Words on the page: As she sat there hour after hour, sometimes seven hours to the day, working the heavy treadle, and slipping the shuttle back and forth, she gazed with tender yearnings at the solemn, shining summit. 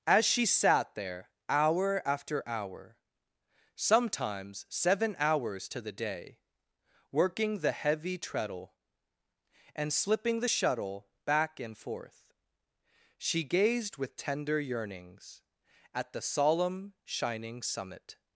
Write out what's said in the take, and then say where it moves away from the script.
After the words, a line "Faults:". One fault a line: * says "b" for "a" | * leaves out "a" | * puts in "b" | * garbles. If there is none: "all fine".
As she sat there hour after hour, sometimes seven hours to the day, working the heavy treadle, and slipping the shuttle back and forth, she gazed with tender yearnings at the solemn, shining summit.
Faults:
all fine